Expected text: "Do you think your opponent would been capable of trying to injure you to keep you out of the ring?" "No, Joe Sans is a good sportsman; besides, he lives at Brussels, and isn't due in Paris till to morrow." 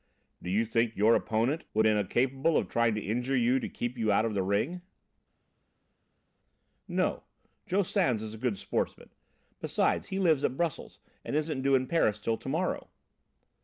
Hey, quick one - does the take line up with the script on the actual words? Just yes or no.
yes